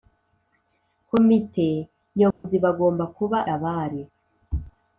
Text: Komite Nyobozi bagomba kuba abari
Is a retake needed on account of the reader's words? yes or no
no